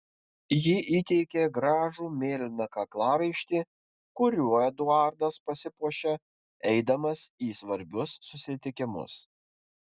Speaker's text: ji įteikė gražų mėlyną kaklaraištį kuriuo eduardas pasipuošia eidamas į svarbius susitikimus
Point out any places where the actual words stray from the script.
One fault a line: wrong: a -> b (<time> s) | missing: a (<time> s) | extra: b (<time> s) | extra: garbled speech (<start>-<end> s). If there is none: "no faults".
no faults